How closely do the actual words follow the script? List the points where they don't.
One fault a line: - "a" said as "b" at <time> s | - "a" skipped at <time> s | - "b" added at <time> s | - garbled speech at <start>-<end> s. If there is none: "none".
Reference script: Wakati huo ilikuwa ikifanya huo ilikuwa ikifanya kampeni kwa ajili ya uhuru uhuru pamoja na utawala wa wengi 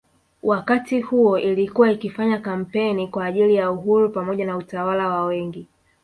- "huo ilikuwa ikifanya" skipped at 2.4 s
- "uhuru" skipped at 4.1 s